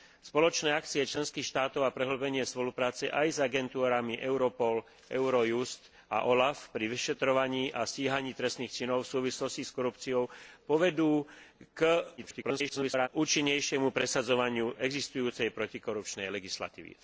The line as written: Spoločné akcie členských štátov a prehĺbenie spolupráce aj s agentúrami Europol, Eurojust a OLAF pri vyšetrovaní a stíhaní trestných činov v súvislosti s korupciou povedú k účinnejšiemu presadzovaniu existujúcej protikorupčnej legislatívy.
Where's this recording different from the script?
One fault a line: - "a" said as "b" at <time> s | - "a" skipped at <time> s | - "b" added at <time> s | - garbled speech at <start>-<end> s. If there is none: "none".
- garbled speech at 12.2-13.1 s